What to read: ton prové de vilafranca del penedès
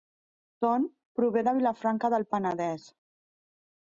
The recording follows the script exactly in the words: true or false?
true